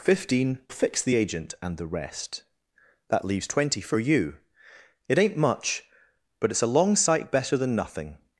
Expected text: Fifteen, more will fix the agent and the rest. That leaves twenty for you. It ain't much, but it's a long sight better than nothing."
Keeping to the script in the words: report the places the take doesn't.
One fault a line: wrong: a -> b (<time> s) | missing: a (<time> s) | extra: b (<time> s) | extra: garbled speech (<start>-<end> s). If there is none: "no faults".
missing: more will (0.6 s)